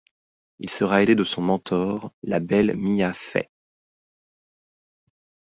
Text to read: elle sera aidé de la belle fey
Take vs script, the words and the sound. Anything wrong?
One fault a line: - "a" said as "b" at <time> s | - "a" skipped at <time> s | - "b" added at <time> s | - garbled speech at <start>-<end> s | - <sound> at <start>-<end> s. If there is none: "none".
- "elle" said as "il" at 0.6 s
- "son mentor" added at 1.2 s
- "mia" added at 2.8 s